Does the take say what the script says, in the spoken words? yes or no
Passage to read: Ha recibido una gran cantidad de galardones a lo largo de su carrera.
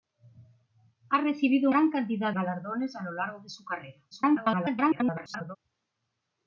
no